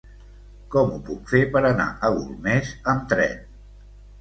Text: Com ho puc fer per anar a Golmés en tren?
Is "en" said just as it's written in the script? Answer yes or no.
no